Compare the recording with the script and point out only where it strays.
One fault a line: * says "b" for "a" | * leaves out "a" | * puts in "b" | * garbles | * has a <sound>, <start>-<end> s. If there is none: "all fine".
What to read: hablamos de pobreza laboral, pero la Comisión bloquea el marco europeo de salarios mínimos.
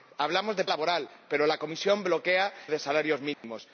* leaves out "pobreza"
* leaves out "el marco europeo"
* has a dropout, 3.3-3.4 s